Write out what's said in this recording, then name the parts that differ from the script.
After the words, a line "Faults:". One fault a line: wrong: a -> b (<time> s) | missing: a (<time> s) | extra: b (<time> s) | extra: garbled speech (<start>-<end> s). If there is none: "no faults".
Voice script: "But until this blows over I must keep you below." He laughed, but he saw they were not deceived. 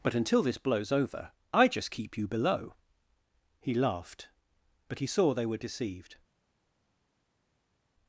"But until this blows over I just keep you below." He laughed, but he saw they were deceived.
Faults:
wrong: must -> just (1.7 s)
missing: not (5.6 s)